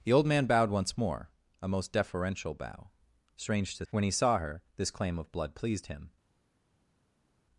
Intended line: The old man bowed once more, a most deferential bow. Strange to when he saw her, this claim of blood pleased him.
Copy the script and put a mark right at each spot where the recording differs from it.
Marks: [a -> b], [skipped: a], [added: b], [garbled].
The old man bowed once more, a most deferential bow. Strange to when he saw her, this claim of blood pleased him.